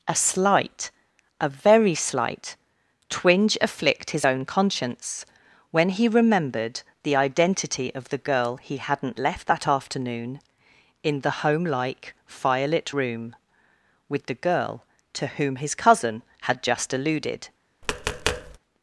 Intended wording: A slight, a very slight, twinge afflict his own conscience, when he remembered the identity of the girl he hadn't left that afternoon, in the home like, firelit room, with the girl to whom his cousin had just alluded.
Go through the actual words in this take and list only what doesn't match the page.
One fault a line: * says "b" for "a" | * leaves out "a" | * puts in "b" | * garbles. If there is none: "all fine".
all fine